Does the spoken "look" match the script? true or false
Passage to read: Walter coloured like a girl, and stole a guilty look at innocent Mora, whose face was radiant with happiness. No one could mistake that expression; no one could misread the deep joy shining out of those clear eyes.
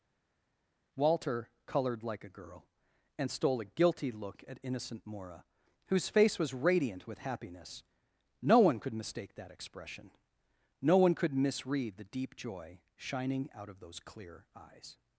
true